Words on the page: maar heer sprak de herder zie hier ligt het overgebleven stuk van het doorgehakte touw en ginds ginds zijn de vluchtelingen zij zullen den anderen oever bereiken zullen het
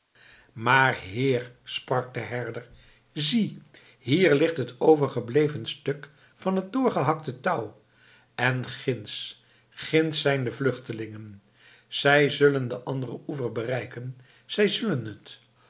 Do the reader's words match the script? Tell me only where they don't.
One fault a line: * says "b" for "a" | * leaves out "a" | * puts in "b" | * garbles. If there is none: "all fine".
* puts in "zij"